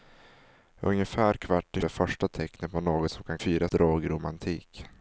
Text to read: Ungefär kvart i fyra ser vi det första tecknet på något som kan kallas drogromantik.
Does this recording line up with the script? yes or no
no